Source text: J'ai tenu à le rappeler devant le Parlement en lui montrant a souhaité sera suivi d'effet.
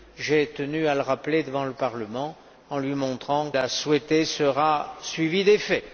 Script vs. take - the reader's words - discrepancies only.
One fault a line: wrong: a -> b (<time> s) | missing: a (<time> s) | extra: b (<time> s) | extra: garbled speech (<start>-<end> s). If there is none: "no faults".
no faults